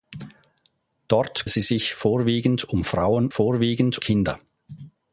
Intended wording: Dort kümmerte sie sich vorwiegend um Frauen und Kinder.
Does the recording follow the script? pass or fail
fail